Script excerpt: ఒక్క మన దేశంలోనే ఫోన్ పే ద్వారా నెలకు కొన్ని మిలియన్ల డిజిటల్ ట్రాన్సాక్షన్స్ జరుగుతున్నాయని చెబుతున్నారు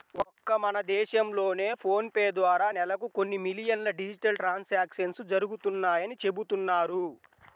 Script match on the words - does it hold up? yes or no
yes